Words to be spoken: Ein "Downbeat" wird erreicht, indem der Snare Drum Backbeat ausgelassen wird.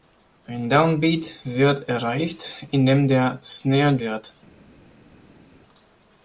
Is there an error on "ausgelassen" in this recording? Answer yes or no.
yes